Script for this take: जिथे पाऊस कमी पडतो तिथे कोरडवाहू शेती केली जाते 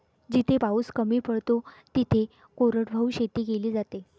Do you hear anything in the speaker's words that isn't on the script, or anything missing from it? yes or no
no